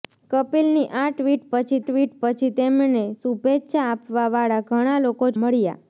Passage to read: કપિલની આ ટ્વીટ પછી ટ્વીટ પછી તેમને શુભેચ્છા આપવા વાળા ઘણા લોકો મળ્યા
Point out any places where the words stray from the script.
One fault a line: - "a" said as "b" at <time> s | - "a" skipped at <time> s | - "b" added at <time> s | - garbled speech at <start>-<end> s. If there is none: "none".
none